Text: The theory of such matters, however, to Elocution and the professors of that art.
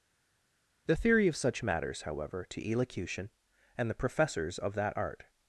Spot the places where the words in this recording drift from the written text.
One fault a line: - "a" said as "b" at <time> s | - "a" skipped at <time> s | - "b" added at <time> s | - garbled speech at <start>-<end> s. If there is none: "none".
none